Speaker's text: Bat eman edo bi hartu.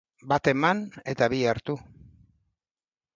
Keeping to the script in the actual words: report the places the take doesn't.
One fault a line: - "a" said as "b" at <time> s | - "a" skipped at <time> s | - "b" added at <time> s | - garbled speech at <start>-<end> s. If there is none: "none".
- "edo" said as "eta" at 1.1 s